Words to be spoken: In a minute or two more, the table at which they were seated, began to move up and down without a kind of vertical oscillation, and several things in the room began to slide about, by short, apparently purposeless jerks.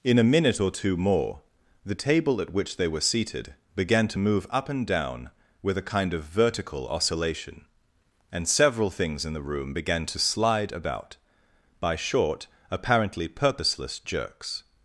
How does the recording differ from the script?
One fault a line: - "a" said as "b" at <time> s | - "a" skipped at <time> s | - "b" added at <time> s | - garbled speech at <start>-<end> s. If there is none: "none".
- "without" said as "with" at 5.6 s